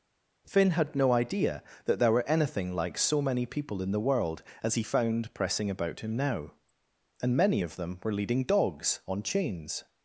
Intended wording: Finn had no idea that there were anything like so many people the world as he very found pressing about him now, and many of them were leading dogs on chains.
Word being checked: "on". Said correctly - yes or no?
yes